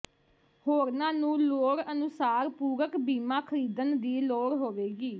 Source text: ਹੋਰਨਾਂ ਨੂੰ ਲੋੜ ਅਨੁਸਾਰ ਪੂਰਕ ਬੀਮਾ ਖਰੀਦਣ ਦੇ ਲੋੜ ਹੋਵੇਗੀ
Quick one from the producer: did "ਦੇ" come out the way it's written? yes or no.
no